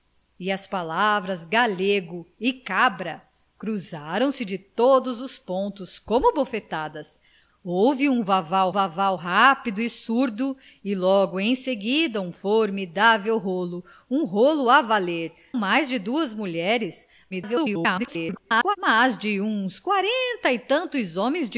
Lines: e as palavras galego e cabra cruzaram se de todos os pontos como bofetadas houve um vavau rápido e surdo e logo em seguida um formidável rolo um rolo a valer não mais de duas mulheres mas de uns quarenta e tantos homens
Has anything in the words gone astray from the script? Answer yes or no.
yes